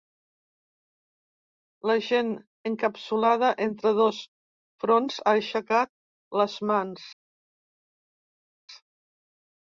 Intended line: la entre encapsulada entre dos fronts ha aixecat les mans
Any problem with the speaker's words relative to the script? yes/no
yes